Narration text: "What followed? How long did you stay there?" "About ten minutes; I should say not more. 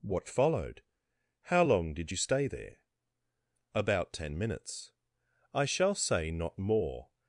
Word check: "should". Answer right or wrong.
wrong